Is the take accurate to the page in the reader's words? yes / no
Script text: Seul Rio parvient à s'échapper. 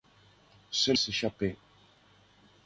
no